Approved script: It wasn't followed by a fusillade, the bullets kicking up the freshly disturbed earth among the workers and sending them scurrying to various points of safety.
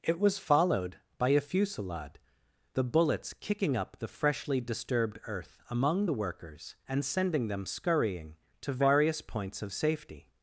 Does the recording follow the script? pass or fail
fail